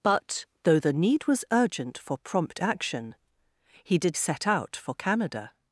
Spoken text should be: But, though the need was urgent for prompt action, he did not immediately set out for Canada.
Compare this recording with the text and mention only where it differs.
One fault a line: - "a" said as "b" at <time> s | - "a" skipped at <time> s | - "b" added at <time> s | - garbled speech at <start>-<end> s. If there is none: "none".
- "not immediately" skipped at 4.2 s